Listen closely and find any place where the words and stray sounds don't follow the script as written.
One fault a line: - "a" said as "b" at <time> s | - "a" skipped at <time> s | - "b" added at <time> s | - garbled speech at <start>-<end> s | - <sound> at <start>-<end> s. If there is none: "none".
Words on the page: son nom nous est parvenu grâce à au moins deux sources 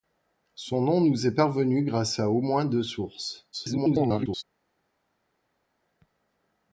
- garbled speech at 3.5-4.4 s